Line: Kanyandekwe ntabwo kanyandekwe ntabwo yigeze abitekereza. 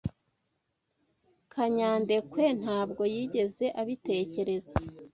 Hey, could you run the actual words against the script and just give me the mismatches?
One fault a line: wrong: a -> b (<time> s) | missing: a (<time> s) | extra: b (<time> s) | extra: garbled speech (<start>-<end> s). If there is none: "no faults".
missing: kanyandekwe ntabwo (3.0 s)